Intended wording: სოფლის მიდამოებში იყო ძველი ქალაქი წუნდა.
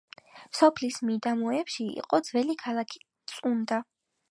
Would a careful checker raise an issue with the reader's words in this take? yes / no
no